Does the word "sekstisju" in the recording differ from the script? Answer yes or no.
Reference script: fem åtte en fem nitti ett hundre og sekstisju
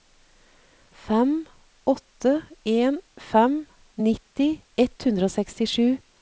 no